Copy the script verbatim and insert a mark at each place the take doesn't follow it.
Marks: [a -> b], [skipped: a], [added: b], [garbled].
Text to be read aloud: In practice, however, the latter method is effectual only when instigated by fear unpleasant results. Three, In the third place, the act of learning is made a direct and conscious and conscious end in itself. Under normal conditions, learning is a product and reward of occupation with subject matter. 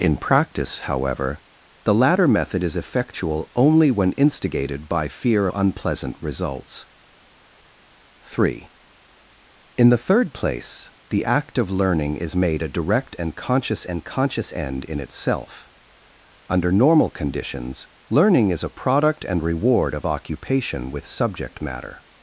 In practice, however, the latter method is effectual only when instigated by fear unpleasant results. Three, In the third place, the act of learning is made a direct and conscious and conscious end in itself. Under normal conditions, learning is a product and reward of occupation with subject matter.